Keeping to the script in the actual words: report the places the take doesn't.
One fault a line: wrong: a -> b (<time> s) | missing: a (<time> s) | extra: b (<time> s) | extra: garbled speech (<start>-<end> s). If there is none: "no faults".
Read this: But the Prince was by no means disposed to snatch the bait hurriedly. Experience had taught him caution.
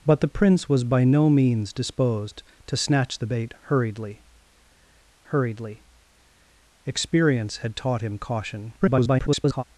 extra: hurriedly (5.3 s)
extra: garbled speech (8.8-9.6 s)